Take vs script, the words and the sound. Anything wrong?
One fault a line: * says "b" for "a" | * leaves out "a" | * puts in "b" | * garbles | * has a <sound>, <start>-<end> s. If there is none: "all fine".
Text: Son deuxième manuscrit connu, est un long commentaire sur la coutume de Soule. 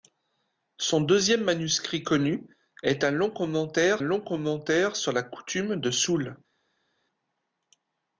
* puts in "long commentaire"